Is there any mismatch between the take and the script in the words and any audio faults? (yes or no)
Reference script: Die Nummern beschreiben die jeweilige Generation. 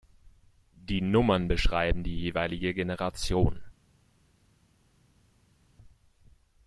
no